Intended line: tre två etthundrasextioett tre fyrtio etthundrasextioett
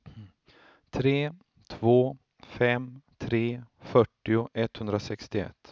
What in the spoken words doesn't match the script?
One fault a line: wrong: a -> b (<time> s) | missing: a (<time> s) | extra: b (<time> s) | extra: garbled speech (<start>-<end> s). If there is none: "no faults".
wrong: etthundrasextioett -> fem (2.4 s)